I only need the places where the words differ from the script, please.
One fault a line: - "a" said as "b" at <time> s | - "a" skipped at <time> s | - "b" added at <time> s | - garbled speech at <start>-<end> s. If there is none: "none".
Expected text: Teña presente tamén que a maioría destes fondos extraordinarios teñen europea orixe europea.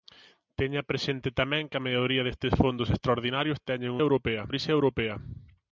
none